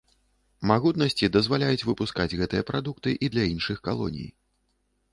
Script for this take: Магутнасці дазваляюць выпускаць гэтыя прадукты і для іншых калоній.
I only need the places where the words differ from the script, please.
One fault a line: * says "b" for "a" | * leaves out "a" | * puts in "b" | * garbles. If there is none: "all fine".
all fine